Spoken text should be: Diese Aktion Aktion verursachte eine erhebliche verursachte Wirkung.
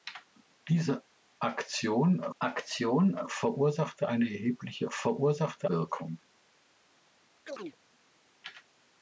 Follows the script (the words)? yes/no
yes